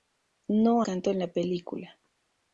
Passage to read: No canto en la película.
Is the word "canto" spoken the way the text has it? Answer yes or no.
yes